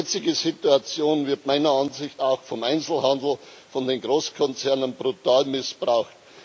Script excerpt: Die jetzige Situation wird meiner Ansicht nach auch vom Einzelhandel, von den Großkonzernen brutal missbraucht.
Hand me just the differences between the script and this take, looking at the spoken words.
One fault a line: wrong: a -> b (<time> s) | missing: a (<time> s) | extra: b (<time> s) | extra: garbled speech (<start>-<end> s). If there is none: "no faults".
missing: nach (2.2 s)